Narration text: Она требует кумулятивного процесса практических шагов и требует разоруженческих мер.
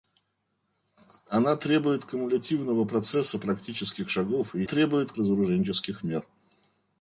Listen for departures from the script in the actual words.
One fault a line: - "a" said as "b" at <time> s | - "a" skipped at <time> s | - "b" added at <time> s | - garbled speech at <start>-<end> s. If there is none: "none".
none